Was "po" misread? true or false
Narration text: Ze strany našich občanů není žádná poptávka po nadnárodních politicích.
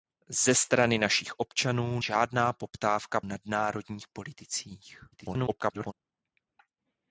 true